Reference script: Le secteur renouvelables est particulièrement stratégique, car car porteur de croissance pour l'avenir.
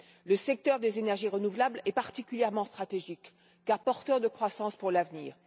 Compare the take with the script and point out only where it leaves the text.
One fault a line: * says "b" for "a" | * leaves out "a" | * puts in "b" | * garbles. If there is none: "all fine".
* puts in "des énergies"
* leaves out "car"